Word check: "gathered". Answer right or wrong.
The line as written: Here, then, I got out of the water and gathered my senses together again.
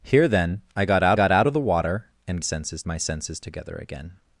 wrong